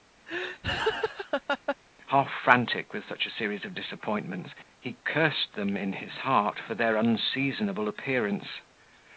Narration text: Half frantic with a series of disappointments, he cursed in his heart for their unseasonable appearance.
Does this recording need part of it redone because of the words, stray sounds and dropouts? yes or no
yes